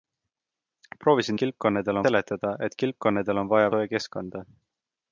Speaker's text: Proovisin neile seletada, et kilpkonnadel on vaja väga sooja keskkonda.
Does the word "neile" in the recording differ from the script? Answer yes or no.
yes